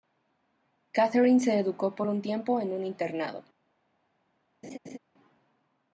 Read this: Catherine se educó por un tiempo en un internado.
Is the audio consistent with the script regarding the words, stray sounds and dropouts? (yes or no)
no